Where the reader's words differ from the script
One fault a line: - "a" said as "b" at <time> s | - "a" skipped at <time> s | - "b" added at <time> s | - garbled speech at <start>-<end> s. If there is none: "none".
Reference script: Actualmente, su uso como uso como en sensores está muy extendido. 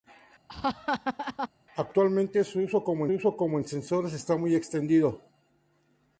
none